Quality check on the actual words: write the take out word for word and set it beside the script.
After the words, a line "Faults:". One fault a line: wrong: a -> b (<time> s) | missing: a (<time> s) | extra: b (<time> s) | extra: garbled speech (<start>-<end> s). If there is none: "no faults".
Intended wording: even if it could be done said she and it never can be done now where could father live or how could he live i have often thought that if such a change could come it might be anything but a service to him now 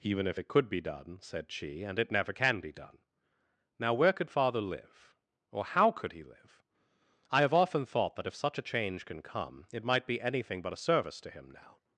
even if it could be done said she and it never can be done now where could father live or how could he live i have often thought that if such a change can come it might be anything but a service to him now
Faults:
wrong: could -> can (9.0 s)